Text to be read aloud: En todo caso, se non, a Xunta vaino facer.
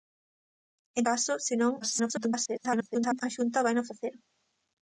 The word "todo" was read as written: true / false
false